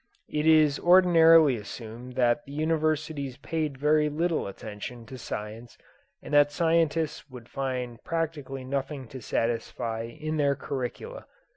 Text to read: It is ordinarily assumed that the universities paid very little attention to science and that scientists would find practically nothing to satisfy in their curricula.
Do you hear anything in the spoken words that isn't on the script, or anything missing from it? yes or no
no